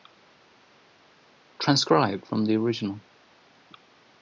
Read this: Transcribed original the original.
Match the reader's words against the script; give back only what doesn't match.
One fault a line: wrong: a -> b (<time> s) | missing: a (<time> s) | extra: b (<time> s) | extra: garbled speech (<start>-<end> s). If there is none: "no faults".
wrong: original -> from (2.2 s)